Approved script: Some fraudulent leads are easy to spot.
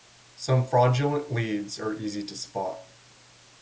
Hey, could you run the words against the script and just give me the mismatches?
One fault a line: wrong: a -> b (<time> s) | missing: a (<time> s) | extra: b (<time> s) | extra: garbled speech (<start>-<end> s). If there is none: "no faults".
no faults